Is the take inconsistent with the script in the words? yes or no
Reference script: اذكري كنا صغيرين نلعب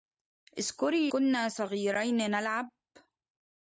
no